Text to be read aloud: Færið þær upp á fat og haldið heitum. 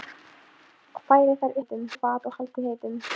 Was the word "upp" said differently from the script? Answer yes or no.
yes